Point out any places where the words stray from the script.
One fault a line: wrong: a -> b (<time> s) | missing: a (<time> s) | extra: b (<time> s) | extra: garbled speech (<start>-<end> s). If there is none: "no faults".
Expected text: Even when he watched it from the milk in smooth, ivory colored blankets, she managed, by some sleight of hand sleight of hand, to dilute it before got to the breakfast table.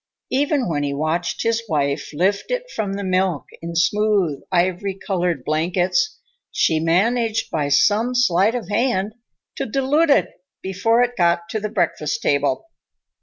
extra: his wife lift (1.4 s)
missing: sleight of hand (9.1 s)
extra: it (11.0 s)